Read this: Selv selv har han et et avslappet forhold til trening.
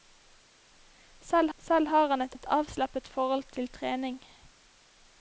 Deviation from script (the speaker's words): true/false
false